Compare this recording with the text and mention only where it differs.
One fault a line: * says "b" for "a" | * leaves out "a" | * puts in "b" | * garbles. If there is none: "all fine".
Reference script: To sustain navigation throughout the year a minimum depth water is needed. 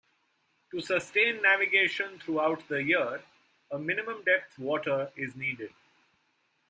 all fine